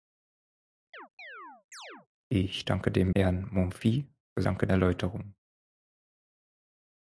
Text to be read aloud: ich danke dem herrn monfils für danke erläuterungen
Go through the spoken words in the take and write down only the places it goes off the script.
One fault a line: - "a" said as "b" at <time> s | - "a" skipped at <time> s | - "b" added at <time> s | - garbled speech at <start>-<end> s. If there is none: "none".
none